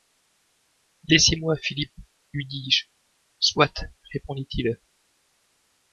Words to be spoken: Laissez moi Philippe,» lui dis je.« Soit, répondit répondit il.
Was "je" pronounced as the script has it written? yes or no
yes